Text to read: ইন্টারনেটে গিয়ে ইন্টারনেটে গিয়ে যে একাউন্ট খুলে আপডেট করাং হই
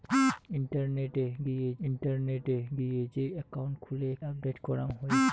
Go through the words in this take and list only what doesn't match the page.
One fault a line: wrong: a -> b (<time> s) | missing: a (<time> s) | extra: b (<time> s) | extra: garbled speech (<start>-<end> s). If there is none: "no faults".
no faults